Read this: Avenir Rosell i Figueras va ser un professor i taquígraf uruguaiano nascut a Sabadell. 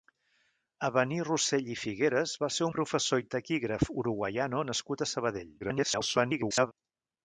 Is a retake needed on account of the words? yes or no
yes